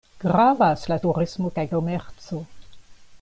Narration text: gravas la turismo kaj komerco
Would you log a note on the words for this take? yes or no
no